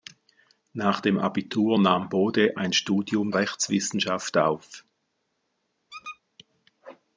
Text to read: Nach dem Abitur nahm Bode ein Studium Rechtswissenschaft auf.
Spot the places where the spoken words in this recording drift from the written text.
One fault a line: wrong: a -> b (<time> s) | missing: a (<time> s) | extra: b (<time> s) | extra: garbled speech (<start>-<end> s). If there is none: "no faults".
no faults